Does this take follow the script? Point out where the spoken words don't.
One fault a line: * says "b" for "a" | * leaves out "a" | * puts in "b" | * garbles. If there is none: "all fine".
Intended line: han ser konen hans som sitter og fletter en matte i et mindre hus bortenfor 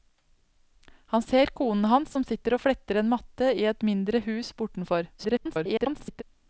* garbles